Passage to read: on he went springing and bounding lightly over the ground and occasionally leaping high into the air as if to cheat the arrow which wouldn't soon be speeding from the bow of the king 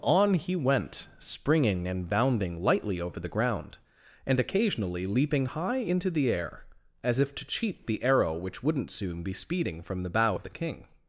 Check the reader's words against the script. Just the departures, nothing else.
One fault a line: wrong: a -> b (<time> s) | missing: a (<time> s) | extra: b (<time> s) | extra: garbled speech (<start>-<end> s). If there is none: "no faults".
no faults